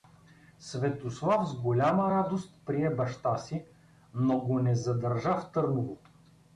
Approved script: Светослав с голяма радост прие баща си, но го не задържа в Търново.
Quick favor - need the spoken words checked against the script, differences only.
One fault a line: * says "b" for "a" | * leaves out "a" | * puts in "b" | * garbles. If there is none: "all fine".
all fine